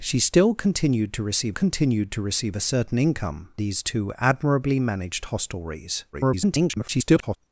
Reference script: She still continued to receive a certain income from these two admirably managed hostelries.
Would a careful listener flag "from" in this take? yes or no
yes